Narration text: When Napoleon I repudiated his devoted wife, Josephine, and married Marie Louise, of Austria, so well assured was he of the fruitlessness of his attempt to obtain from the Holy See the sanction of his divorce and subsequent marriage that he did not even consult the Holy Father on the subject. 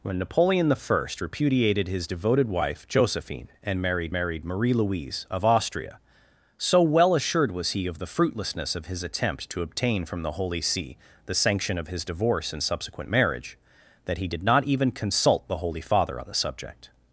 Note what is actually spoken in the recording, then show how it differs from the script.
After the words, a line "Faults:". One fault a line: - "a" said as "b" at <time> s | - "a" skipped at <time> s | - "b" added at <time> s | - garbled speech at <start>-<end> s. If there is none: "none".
When Napoleon I repudiated his devoted wife, Josephine, and married married Marie Louise, of Austria, so well assured was he of the fruitlessness of his attempt to obtain from the Holy See the sanction of his divorce and subsequent marriage that he did not even consult the Holy Father on the subject.
Faults:
- "married" added at 4.1 s